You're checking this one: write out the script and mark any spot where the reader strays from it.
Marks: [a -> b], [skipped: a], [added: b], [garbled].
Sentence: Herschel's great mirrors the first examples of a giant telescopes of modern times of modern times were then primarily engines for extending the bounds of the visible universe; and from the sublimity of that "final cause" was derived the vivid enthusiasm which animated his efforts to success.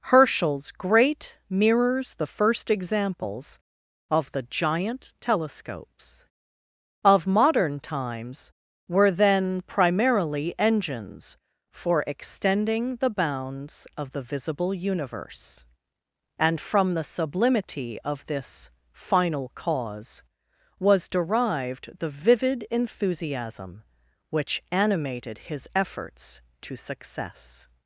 Herschel's great mirrors the first examples of [a -> the] giant telescopes of modern times [skipped: of modern times] were then primarily engines for extending the bounds of the visible universe; and from the sublimity of [that -> this] "final cause" was derived the vivid enthusiasm which animated his efforts to success.